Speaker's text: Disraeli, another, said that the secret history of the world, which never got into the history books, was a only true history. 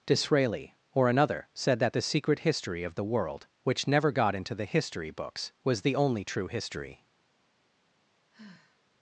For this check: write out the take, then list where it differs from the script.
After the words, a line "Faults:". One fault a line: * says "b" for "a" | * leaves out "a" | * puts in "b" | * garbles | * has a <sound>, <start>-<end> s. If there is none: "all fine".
Disraeli, or another, said that the secret history of the world, which never got into the history books, was the only true history.
Faults:
* puts in "or"
* says "the" for "a"
* has a sigh, 8.3-8.9 s